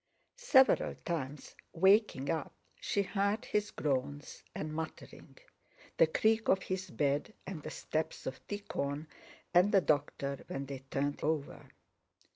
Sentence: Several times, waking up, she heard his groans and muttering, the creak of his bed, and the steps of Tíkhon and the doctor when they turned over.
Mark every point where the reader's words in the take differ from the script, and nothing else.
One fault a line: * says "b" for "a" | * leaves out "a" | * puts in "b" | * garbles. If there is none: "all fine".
all fine